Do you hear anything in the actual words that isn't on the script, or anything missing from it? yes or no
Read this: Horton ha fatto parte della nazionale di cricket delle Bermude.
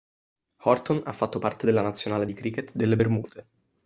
no